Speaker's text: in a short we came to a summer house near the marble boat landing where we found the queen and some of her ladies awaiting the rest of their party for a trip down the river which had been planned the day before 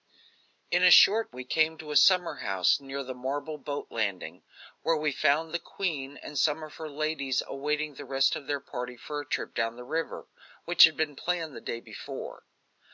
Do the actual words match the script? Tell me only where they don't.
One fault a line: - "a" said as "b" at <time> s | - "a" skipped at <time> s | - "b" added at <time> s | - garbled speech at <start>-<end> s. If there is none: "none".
none